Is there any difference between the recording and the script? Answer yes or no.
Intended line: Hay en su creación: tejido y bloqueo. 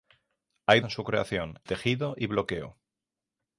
no